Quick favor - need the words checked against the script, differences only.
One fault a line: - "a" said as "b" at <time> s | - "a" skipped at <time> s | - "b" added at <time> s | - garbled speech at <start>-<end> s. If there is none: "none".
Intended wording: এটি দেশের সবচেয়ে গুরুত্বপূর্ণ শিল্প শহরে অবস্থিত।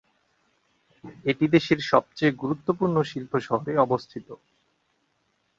none